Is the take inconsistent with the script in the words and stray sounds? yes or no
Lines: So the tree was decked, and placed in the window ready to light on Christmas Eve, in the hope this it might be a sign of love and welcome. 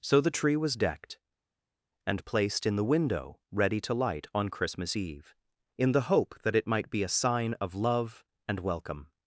yes